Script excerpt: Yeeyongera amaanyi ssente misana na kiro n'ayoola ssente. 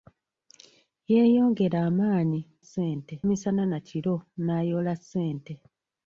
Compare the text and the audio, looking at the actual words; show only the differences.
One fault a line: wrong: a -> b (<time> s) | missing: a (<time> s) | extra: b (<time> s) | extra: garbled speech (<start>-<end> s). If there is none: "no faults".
no faults